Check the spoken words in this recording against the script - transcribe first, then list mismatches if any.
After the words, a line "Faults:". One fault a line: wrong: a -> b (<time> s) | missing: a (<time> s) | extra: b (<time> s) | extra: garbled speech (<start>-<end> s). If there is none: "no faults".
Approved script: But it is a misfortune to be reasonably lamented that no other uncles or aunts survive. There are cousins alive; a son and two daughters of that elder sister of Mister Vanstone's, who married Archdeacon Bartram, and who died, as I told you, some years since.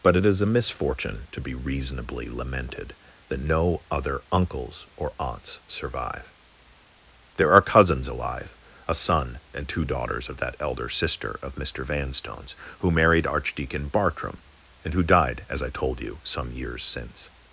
But it is a misfortune to be reasonably lamented that no other uncles or aunts survive. There are cousins alive; a son and two daughters of that elder sister of Mister Vanstone's, who married Archdeacon Bartram, and who died, as I told you, some years since.
Faults:
no faults